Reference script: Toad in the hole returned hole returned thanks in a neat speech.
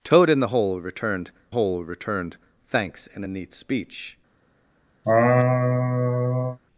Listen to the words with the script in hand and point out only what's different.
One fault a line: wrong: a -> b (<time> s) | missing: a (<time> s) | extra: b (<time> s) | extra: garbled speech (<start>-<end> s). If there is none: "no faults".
no faults